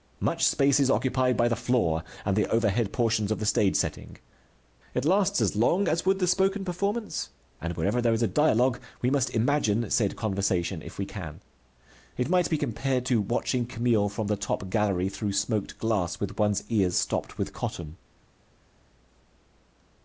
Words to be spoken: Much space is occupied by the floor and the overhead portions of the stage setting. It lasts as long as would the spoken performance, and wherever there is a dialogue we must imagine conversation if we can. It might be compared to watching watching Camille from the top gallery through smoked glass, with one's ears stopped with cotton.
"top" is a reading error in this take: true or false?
false